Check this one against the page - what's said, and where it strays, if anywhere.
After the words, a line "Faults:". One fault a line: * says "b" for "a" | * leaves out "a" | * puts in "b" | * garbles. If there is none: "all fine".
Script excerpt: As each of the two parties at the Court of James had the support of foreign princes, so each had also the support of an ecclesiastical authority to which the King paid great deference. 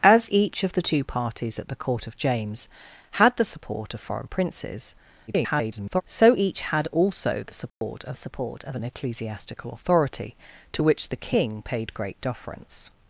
As each of the two parties at the Court of James had the support of foreign princes, [garbled] so each had also the support of support of an ecclesiastical authority to which the King paid great deference.
Faults:
* garbles
* puts in "support of"